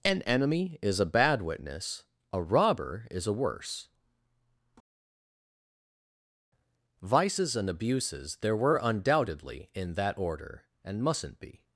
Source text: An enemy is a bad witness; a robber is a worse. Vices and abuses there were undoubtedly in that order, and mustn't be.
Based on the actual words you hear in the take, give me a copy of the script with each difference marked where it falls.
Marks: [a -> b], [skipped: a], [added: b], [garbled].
An enemy is a bad witness; a robber is a worse. Vices and abuses there were undoubtedly in that order, and mustn't be.